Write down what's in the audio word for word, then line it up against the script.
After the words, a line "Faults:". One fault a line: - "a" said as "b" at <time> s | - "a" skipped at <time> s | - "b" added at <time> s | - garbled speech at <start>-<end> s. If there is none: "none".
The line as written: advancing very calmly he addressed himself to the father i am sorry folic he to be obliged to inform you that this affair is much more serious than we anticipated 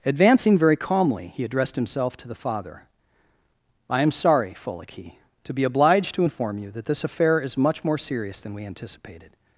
advancing very calmly he addressed himself to the father i am sorry folic he to be obliged to inform you that this affair is much more serious than we anticipated
Faults:
none